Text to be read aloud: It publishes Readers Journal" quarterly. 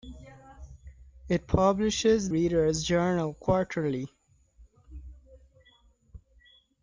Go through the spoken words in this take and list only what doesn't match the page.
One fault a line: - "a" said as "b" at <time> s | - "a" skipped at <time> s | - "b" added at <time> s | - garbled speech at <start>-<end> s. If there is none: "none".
none